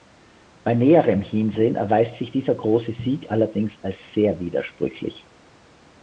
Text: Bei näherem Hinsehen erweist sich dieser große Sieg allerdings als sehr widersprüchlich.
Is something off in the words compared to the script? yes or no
no